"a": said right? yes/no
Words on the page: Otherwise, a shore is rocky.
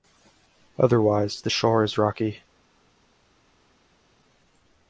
no